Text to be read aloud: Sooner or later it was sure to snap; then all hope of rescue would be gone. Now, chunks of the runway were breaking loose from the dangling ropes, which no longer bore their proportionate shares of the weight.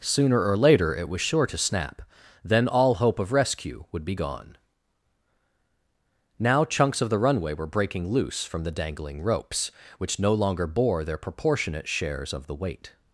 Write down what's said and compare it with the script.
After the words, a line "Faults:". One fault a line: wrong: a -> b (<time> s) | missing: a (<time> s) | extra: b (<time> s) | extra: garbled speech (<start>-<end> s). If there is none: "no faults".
Sooner or later it was sure to snap; then all hope of rescue would be gone. Now, chunks of the runway were breaking loose from the dangling ropes, which no longer bore their proportionate shares of the weight.
Faults:
no faults